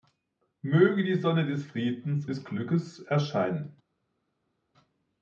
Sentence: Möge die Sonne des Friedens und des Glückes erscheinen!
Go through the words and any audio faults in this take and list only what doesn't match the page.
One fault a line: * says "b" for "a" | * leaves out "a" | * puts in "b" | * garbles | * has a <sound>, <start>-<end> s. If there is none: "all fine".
* leaves out "und"